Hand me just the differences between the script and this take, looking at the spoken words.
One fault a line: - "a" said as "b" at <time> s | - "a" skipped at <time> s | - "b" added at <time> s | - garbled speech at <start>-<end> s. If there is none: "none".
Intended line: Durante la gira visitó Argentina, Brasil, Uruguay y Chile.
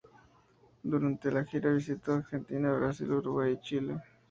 none